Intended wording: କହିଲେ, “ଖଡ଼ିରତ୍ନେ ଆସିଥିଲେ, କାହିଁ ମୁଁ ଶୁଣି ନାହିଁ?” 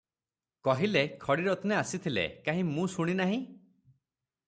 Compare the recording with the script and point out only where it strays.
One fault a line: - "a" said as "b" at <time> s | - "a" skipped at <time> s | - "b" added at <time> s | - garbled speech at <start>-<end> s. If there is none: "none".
none